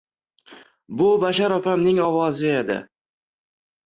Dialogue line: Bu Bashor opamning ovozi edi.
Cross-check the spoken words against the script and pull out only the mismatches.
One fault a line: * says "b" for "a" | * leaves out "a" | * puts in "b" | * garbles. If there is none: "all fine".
all fine